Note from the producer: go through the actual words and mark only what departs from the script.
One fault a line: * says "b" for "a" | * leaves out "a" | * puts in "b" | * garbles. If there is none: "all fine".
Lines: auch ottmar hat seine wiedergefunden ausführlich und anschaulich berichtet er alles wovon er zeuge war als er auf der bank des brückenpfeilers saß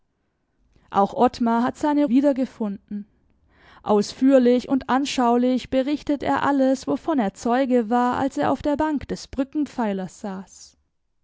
all fine